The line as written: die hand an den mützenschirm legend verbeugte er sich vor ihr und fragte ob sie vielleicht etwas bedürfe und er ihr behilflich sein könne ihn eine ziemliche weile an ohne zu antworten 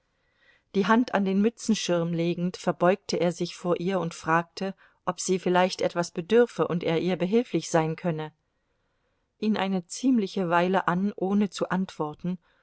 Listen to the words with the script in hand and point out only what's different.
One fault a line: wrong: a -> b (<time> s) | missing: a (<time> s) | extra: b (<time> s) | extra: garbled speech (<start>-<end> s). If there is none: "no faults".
no faults